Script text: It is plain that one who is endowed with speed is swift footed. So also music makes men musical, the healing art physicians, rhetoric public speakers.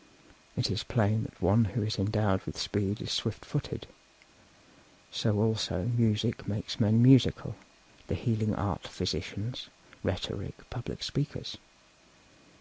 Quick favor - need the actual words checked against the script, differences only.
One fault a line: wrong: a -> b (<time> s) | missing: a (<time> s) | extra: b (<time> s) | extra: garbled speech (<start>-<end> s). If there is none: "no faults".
no faults